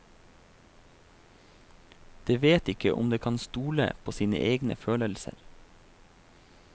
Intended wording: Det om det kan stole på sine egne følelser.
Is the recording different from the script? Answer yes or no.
yes